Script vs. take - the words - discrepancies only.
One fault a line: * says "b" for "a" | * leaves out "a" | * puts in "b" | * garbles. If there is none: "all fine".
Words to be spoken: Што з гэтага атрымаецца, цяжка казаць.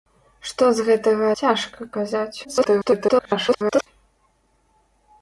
* leaves out "атрымаецца"
* garbles